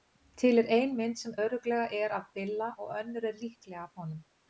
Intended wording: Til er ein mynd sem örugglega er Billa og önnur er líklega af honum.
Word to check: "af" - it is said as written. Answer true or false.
true